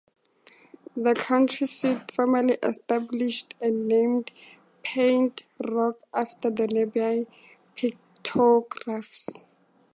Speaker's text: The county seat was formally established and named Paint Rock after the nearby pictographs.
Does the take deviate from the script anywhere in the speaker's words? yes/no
yes